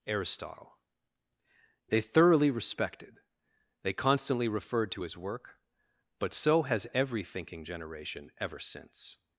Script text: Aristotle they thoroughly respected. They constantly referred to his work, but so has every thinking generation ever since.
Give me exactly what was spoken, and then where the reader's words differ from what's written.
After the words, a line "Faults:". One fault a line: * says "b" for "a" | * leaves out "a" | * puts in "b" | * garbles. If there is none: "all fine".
Aristotle they thoroughly respected. They constantly referred to his work, but so has every thinking generation ever since.
Faults:
all fine